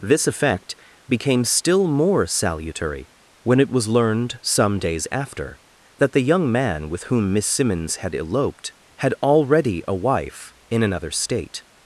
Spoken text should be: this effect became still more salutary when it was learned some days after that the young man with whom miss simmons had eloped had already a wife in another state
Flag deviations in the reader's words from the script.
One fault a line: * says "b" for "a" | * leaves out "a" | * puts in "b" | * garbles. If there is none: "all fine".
all fine